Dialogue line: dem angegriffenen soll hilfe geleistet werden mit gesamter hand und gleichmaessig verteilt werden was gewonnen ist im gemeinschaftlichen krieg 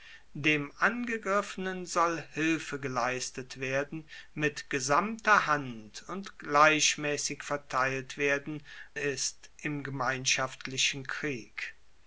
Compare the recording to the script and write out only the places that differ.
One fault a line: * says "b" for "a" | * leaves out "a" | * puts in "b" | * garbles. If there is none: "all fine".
* leaves out "was gewonnen"